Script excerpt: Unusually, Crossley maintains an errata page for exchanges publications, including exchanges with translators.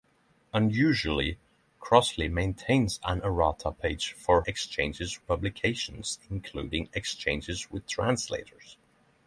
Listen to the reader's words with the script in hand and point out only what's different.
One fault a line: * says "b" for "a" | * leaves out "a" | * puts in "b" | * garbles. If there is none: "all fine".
all fine